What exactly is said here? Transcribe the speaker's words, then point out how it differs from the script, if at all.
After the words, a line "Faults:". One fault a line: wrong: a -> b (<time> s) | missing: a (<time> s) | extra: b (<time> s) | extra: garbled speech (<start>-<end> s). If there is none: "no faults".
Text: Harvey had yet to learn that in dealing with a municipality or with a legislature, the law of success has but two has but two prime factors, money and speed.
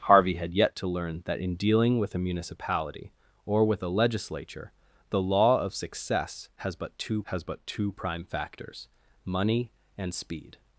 Harvey had yet to learn that in dealing with a municipality or with a legislature, the law of success has but two has but two prime factors, money and speed.
Faults:
no faults